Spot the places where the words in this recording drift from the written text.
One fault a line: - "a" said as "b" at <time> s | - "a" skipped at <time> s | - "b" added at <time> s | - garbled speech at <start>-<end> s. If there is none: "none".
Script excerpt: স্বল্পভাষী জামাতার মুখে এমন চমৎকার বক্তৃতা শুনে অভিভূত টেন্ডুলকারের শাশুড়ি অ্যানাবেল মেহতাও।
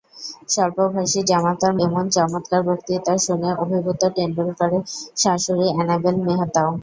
- "মুখে" skipped at 1.7 s